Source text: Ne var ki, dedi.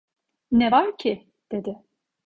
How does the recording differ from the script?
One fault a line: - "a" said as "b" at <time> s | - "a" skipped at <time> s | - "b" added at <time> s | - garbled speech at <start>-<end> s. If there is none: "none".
none